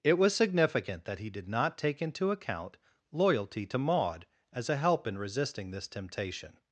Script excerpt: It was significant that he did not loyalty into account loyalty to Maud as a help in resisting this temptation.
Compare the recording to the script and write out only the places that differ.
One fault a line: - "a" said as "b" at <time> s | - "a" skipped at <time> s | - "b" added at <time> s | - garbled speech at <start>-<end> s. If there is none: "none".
- "loyalty" said as "take" at 1.8 s